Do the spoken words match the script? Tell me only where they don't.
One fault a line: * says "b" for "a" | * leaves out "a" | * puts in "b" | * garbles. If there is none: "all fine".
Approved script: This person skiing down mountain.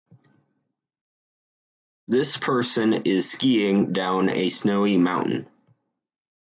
* puts in "is"
* puts in "a snowy"